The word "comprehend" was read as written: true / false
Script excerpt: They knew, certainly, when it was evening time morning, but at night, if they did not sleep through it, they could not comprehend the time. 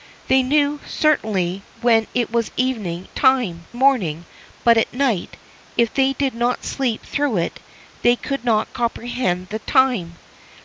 true